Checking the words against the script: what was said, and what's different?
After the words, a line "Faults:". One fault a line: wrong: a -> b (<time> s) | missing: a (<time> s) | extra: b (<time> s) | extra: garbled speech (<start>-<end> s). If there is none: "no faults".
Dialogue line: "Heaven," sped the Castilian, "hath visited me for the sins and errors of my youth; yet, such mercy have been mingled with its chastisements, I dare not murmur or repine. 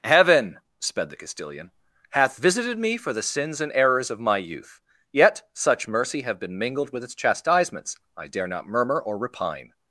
"Heaven," sped the Castilian, "hath visited me for the sins and errors of my youth; yet, such mercy have been mingled with its chastisements, I dare not murmur or repine.
Faults:
no faults